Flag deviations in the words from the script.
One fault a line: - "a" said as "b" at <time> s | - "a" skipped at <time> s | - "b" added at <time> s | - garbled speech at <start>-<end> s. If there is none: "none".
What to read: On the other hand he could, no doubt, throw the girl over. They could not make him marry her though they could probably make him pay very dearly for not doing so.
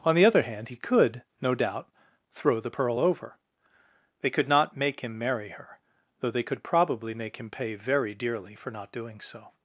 - "girl" said as "pearl" at 2.7 s